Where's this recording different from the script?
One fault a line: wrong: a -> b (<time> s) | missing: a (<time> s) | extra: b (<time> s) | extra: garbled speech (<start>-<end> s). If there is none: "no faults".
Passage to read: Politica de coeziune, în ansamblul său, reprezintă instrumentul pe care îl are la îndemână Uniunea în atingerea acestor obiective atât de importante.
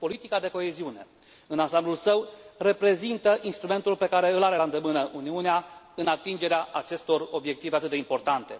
no faults